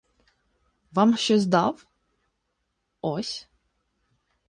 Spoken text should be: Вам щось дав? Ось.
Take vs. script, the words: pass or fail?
pass